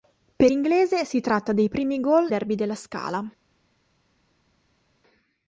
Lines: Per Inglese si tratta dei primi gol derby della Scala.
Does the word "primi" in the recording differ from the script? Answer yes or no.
no